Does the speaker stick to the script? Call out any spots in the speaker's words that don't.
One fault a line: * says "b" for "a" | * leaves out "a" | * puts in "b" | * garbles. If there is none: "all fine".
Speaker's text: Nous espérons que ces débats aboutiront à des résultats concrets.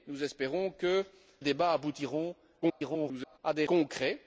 * leaves out "ces"
* garbles
* leaves out "résultats"